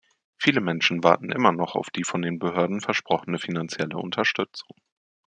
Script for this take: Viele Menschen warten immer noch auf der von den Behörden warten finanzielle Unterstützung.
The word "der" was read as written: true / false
false